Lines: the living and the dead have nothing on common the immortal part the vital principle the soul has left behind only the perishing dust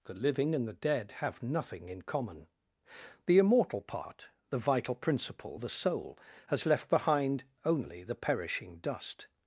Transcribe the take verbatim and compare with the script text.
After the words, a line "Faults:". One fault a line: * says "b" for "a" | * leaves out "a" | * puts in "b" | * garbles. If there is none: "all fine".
the living and the dead have nothing in common the immortal part the vital principle the soul has left behind only the perishing dust
Faults:
* says "in" for "on"